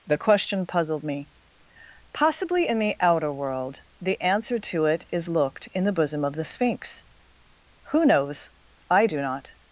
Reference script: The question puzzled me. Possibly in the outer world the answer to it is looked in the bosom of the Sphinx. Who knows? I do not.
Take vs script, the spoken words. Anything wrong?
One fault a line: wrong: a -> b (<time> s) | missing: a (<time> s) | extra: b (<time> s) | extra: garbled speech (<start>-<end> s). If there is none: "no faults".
no faults